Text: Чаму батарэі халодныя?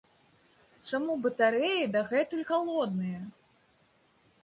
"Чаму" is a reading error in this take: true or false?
false